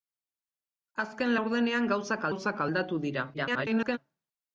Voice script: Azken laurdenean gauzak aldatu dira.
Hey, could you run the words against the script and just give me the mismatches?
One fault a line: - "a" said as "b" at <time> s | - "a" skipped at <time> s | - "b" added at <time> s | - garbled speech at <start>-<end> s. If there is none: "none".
- "gauzak" added at 2.3 s
- garbled speech at 3.3-4.0 s